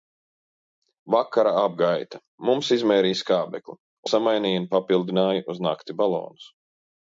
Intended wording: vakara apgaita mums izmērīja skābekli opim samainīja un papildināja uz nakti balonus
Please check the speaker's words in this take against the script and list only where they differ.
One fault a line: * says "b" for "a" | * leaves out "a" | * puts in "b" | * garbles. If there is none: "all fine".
* leaves out "opim"